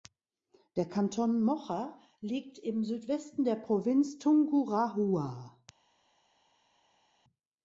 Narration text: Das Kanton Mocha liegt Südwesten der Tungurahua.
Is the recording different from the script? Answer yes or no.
yes